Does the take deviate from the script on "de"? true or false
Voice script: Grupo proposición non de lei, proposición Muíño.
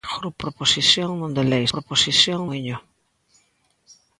false